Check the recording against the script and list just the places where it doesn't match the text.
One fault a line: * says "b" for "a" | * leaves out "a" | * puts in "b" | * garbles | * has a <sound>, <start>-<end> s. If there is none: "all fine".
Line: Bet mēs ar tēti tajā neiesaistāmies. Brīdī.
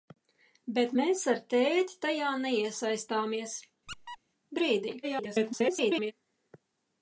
* has a squeak, 3.9-4.2 s
* garbles